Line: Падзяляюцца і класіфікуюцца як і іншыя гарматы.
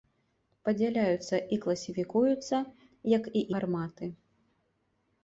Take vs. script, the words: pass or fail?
fail